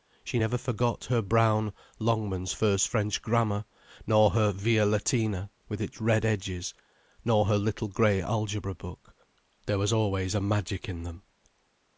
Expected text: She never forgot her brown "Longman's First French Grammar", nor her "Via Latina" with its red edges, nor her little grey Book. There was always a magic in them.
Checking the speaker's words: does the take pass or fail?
fail